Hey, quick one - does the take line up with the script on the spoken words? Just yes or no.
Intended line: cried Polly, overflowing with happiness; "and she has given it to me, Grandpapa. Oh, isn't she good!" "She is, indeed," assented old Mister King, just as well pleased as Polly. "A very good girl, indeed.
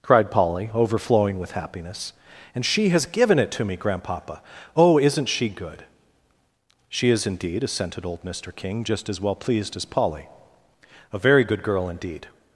yes